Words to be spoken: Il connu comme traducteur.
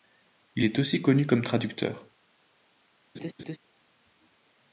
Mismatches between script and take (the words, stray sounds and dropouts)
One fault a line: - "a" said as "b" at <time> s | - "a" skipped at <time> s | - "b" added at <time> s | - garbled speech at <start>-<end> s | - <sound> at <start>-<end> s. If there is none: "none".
- "est aussi" added at 0.6 s
- laugh at 3.1-3.6 s